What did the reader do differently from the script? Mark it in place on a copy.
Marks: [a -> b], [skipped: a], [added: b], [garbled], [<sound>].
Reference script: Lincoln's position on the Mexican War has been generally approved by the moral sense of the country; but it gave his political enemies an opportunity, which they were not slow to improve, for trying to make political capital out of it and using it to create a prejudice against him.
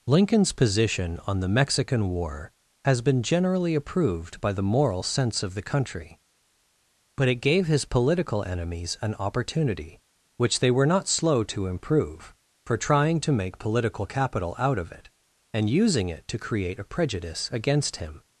Lincoln's position on the Mexican War has been generally approved by the moral sense of the country; but it gave his political enemies an opportunity, which they were not slow to improve, for trying to make political capital out of it and using it to create a prejudice against him.